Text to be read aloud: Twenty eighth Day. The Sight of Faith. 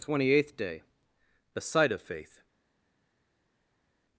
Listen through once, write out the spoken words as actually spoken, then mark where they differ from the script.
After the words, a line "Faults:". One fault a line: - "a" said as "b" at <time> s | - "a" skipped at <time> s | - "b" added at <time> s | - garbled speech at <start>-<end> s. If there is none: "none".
Twenty eighth Day. The Sight of Faith.
Faults:
none